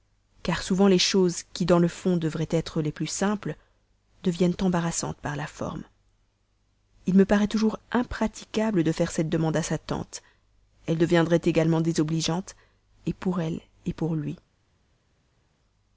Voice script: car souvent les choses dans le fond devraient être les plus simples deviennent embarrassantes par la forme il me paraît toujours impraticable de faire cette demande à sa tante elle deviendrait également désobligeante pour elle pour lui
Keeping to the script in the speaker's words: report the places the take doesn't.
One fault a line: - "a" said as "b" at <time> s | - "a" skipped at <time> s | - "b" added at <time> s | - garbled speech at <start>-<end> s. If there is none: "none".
- "qui" added at 1.5 s